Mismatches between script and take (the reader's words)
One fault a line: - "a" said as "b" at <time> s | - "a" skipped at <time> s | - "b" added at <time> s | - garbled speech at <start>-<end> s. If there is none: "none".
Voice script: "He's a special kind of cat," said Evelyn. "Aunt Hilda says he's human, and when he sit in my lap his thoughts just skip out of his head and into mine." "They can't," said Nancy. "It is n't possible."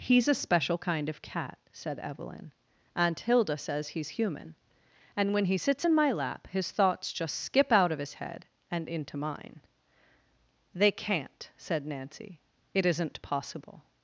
- "sit" said as "sits" at 5.6 s